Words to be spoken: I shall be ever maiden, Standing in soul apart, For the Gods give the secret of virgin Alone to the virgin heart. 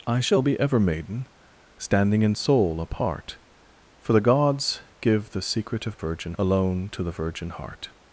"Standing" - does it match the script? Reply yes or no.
yes